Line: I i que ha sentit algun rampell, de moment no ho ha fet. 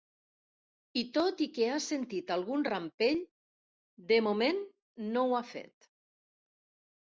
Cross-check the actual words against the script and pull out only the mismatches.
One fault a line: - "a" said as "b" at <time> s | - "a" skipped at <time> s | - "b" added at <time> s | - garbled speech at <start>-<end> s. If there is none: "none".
- "tot" added at 1.2 s